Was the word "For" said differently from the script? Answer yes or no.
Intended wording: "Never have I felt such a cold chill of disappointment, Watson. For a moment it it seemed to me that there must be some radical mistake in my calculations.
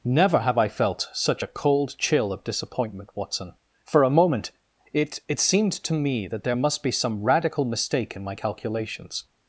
no